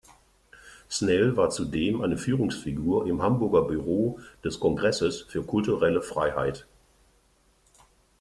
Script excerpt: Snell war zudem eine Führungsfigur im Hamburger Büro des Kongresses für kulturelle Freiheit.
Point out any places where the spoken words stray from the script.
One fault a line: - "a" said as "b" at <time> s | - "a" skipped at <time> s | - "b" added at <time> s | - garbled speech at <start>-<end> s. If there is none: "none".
none